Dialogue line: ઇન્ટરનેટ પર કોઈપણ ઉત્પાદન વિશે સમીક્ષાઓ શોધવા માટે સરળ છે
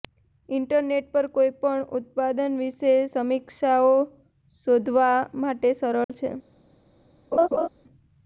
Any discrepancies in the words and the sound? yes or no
yes